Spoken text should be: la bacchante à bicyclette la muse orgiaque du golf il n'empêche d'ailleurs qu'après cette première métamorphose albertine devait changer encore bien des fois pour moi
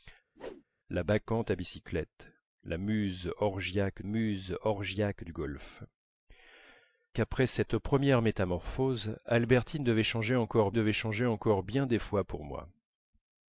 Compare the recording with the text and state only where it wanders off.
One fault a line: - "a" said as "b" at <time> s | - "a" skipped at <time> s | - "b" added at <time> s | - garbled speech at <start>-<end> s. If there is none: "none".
- "muse orgiaque" added at 4.0 s
- "il n'empêche d'ailleurs" skipped at 5.8 s
- "devait changer encore" added at 10.7 s